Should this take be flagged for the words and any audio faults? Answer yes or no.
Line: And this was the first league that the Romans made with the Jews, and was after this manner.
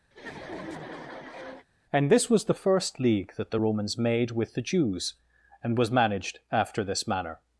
yes